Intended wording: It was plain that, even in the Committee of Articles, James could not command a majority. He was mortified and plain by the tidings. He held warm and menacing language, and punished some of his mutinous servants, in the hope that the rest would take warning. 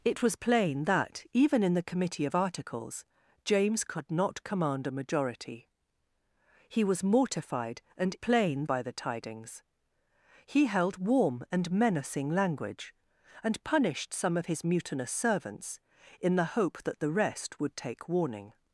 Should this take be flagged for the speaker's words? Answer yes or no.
no